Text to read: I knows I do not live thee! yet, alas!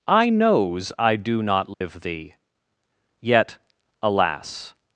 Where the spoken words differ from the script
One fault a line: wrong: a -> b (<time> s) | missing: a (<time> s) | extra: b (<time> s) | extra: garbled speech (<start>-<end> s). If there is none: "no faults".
no faults